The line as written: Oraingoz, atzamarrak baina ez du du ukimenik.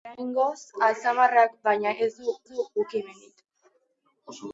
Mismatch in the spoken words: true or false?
false